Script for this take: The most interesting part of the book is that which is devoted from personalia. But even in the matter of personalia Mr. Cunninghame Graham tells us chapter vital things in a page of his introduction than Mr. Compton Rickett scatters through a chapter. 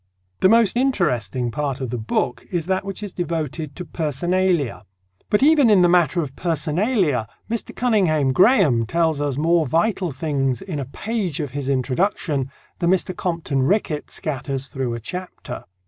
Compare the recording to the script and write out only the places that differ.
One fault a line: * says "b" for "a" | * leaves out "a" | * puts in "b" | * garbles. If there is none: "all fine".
* says "to" for "from"
* says "more" for "chapter"